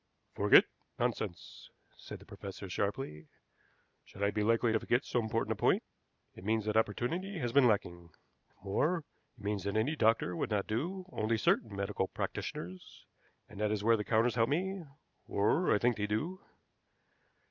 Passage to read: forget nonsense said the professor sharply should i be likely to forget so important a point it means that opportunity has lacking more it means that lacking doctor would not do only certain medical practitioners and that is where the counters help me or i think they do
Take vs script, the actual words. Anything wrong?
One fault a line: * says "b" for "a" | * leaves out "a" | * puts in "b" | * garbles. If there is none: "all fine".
* puts in "been"
* says "any" for "lacking"